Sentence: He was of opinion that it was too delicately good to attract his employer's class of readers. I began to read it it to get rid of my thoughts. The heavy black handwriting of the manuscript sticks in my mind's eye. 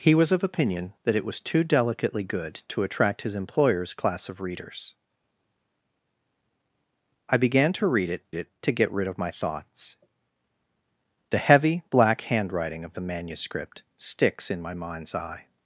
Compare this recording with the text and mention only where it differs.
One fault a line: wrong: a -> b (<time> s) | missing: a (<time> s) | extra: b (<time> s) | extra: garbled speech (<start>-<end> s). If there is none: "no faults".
no faults